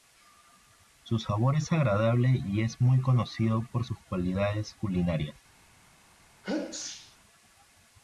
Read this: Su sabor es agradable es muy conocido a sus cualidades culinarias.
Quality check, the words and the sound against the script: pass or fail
fail